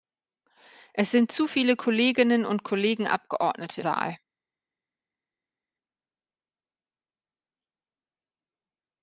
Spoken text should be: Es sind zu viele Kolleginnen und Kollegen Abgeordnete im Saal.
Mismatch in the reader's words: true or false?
true